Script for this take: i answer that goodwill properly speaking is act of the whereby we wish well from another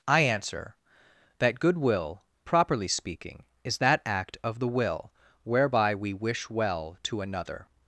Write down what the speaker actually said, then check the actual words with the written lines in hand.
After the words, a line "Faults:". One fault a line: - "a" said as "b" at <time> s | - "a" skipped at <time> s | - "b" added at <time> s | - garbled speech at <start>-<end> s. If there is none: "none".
i answer that goodwill properly speaking is that act of the will whereby we wish well to another
Faults:
- "that" added at 3.8 s
- "will" added at 4.7 s
- "from" said as "to" at 7.0 s